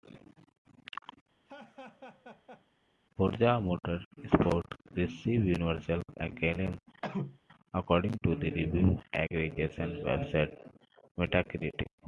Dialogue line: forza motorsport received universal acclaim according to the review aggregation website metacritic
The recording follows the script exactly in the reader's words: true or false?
true